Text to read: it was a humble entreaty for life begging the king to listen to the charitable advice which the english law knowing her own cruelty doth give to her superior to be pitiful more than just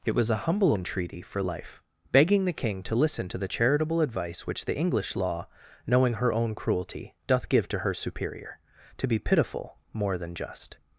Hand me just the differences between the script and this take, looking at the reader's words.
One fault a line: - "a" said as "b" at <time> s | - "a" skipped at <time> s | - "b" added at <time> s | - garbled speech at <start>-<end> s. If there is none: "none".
none